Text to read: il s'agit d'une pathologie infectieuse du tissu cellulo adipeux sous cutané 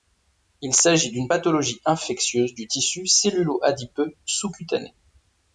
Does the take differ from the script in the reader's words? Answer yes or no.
no